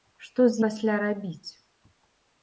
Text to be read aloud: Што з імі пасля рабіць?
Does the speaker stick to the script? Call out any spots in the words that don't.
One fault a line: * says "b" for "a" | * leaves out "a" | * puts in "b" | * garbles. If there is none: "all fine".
* leaves out "імі"